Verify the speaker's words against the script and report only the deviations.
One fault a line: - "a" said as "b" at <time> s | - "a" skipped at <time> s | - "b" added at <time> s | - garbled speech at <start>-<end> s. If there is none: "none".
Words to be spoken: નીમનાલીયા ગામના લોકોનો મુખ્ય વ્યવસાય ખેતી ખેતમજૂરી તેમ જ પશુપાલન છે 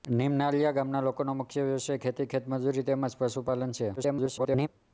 - garbled speech at 4.0-4.7 s